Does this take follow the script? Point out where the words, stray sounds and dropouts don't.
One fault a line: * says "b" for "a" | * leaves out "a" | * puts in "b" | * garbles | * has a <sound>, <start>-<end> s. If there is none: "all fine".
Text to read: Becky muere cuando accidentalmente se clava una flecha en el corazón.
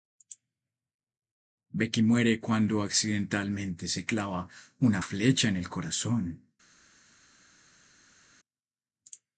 all fine